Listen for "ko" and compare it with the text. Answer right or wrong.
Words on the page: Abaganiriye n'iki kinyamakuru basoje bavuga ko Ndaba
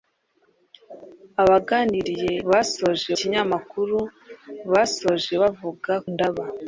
wrong